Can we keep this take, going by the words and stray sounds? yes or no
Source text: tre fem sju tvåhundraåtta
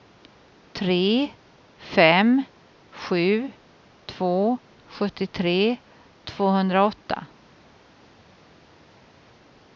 no